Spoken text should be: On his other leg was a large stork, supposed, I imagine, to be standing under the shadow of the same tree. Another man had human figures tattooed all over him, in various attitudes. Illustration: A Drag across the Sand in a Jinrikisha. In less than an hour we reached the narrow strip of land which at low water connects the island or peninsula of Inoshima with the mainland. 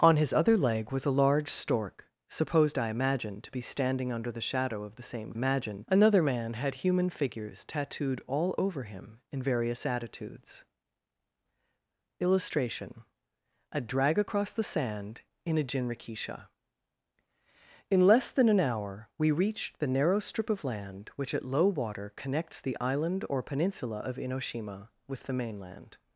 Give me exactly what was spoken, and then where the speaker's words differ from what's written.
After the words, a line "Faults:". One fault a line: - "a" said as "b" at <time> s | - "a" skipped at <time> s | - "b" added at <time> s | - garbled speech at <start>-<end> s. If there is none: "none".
On his other leg was a large stork, supposed, I imagine, to be standing under the shadow of the same imagine. Another man had human figures tattooed all over him, in various attitudes. Illustration: A Drag across the Sand in a Jinrikisha. In less than an hour we reached the narrow strip of land which at low water connects the island or peninsula of Inoshima with the mainland.
Faults:
- "tree" said as "imagine" at 5.3 s